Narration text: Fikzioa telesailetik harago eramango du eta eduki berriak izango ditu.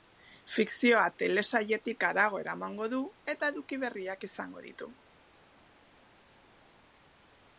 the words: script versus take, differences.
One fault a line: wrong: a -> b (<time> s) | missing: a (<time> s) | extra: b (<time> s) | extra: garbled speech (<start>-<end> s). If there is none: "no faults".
no faults